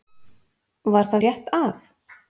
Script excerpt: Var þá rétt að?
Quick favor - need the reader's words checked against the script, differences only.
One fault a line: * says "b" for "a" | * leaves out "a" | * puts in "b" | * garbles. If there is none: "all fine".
all fine